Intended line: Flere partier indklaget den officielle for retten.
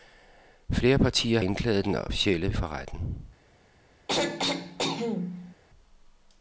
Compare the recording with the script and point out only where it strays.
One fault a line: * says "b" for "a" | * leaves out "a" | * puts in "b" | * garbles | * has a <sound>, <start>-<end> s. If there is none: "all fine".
* has a throat clearing, 4.1-5.5 s